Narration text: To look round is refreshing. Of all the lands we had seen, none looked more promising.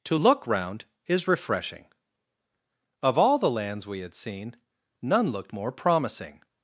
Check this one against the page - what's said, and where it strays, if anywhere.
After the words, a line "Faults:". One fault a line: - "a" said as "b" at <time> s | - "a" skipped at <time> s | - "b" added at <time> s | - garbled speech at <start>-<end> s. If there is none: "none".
To look round is refreshing. Of all the lands we had seen, none looked more promising.
Faults:
none